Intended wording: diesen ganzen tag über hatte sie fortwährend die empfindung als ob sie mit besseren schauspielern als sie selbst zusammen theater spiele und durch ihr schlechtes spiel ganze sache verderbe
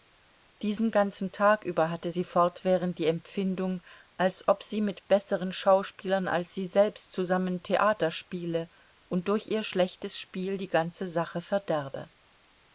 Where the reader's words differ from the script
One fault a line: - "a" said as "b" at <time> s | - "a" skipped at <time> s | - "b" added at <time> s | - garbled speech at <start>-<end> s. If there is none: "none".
- "die" added at 10.6 s